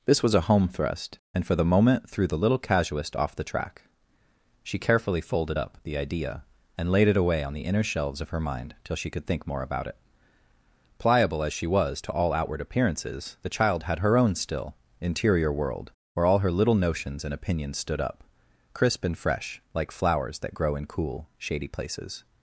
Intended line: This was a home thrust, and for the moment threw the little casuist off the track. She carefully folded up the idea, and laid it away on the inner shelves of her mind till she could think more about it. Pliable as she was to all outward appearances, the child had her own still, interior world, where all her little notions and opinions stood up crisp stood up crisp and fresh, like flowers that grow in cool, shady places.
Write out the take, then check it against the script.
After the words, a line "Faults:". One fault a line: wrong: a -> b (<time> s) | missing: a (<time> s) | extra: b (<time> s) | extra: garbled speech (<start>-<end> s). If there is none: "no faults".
This was a home thrust, and for the moment threw the little casuist off the track. She carefully folded up the idea, and laid it away on the inner shelves of her mind till she could think more about it. Pliable as she was to all outward appearances, the child had her own still, interior world, where all her little notions and opinions stood up crisp and fresh, like flowers that grow in cool, shady places.
Faults:
missing: stood up crisp (19.0 s)